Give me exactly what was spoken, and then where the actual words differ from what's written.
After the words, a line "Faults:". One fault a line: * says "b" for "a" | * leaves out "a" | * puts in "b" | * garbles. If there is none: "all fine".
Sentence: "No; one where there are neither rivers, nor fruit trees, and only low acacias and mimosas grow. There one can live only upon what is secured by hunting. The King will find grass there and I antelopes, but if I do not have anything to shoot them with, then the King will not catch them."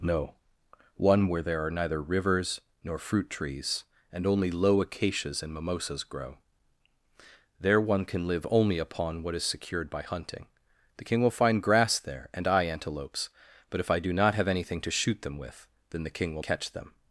"No; one where there are neither rivers, nor fruit trees, and only low acacias and mimosas grow. There one can live only upon what is secured by hunting. The King will find grass there and I antelopes, but if I do not have anything to shoot them with, then the King will catch them."
Faults:
* leaves out "not"